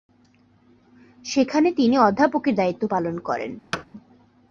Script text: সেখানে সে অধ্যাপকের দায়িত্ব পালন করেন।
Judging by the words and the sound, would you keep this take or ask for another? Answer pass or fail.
fail